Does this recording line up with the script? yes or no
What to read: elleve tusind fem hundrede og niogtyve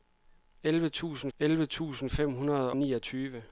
no